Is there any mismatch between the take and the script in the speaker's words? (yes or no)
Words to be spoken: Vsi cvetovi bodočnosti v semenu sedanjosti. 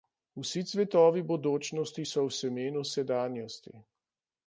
yes